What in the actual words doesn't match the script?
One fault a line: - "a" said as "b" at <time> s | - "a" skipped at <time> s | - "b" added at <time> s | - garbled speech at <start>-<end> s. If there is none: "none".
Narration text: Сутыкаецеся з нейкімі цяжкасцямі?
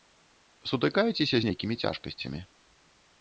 none